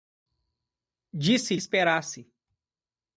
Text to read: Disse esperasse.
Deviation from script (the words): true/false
false